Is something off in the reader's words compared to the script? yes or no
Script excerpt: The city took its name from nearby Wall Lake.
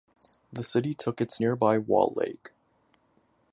yes